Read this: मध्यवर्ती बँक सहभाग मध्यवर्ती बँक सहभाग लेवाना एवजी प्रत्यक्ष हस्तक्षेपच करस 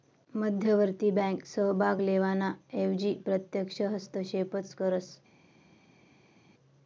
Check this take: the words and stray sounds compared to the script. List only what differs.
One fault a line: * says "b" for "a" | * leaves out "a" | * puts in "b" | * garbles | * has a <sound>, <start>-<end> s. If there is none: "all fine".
* leaves out "मध्यवर्ती बँक सहभाग"